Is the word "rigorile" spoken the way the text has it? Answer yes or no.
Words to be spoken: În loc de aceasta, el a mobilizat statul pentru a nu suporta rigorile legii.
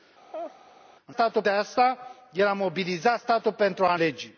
no